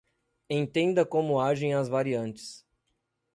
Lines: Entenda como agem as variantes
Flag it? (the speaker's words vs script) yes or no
no